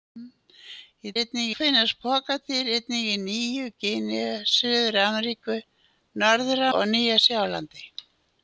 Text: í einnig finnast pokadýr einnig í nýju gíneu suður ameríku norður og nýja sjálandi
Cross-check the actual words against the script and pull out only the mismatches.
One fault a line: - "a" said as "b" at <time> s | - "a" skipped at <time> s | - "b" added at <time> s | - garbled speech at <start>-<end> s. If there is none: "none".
none